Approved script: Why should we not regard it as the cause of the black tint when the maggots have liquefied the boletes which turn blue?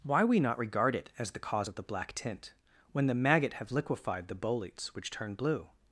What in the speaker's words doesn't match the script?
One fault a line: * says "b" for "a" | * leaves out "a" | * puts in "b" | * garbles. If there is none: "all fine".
* leaves out "should"
* says "maggot" for "maggots"